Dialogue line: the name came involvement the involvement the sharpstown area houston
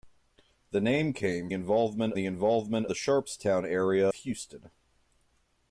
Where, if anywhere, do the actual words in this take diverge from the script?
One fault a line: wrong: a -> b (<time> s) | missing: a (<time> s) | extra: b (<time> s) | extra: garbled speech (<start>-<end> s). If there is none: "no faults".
no faults